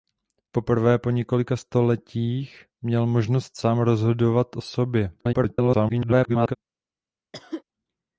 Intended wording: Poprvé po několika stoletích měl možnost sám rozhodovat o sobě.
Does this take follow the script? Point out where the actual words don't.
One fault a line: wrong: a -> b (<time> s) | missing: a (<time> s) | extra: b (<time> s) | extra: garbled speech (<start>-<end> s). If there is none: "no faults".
extra: garbled speech (5.2-6.6 s)